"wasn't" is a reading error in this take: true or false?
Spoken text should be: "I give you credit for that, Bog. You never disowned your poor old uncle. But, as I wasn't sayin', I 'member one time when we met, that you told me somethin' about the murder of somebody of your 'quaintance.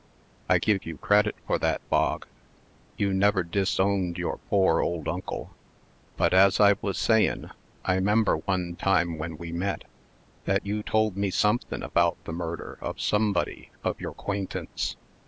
true